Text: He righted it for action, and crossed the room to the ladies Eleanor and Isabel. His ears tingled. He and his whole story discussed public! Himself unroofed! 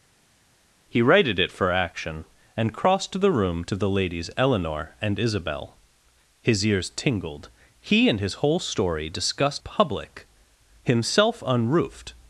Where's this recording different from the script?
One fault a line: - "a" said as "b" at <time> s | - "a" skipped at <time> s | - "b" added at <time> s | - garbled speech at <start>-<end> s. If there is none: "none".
none